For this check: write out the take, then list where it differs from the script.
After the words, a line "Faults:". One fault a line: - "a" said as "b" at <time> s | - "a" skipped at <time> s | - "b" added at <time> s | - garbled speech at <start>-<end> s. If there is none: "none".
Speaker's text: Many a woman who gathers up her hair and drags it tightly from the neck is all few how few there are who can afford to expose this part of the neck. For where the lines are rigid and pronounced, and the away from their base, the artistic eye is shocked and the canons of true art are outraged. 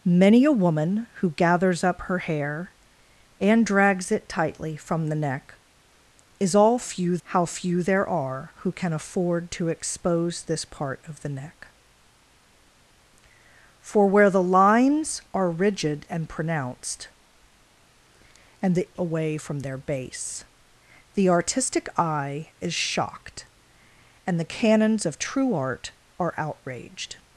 Many a woman who gathers up her hair and drags it tightly from the neck is all few how few there are who can afford to expose this part of the neck. For where the lines are rigid and pronounced, and the away from their base, the artistic eye is shocked and the canons of true art are outraged.
Faults:
none